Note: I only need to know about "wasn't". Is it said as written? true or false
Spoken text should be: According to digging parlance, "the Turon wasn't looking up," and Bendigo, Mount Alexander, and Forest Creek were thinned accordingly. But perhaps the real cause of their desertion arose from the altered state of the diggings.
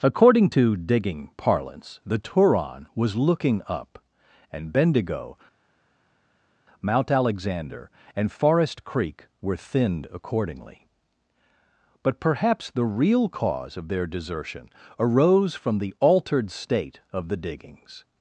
false